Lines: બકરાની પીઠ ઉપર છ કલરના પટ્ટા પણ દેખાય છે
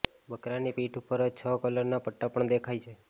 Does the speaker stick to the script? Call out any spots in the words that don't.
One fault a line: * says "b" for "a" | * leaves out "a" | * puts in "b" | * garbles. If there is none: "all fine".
all fine